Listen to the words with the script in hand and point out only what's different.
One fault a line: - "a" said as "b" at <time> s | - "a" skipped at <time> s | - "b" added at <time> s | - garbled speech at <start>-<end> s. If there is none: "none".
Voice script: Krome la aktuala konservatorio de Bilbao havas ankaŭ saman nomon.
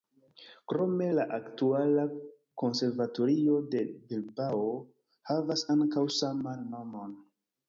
none